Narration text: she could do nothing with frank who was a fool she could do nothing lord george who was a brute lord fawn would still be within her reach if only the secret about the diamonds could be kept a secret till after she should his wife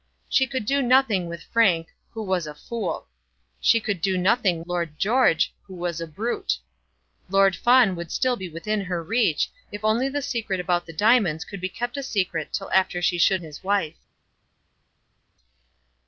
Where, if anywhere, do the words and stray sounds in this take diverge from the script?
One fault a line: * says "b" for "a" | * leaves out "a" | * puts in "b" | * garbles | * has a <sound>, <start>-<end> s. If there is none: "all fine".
all fine